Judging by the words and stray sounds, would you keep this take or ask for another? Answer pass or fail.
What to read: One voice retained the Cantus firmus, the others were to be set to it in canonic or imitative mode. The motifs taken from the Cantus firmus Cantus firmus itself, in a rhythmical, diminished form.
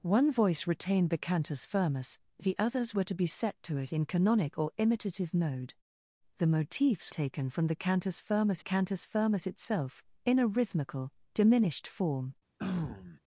fail